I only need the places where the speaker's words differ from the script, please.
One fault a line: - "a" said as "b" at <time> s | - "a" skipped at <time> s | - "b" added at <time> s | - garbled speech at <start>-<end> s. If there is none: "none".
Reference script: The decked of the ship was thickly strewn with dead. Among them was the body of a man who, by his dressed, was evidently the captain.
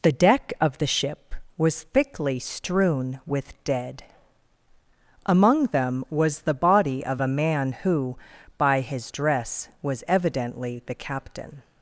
- "decked" said as "deck" at 0.1 s
- "dressed" said as "dress" at 9.1 s